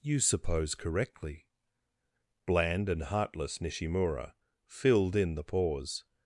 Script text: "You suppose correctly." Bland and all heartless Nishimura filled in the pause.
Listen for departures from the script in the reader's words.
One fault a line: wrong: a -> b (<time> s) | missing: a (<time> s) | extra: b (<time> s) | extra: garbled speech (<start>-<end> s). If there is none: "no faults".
missing: all (3.0 s)